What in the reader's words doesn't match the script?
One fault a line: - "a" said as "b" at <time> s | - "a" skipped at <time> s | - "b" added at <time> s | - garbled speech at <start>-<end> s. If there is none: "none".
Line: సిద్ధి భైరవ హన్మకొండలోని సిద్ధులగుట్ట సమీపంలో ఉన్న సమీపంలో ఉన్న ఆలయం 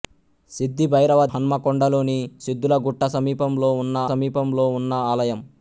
none